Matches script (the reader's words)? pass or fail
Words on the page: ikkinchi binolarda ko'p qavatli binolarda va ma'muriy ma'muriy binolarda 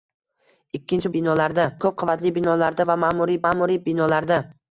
pass